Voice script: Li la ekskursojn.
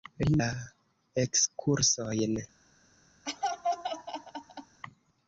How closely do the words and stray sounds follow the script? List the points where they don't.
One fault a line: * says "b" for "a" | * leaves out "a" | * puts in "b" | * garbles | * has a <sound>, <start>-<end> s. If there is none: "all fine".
* has a laugh, 3.3-4.8 s